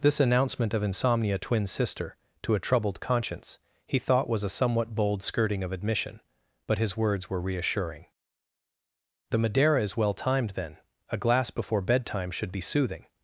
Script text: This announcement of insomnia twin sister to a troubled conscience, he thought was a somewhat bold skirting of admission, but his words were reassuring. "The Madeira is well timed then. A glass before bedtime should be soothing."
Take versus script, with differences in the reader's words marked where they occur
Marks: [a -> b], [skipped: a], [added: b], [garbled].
This announcement of insomnia twin sister to a troubled conscience, he thought was a somewhat bold skirting of admission, but his words were reassuring. "The Madeira is well timed then. A glass before bedtime should be soothing."